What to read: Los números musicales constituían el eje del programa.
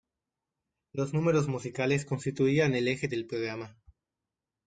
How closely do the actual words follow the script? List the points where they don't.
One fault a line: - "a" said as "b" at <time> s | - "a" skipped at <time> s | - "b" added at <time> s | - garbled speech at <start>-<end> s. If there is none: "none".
none